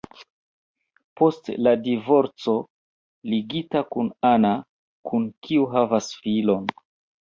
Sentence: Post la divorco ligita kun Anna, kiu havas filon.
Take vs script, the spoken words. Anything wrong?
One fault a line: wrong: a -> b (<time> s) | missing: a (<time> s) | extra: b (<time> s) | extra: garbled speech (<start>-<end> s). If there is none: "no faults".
extra: kun (5.1 s)